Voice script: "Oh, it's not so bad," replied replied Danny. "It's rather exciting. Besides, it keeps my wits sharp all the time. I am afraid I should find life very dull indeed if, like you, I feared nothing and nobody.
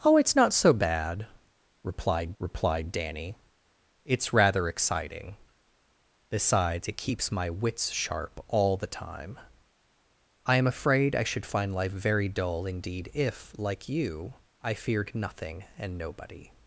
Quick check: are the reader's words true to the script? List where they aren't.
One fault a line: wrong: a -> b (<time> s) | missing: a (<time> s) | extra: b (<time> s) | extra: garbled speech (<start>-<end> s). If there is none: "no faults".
no faults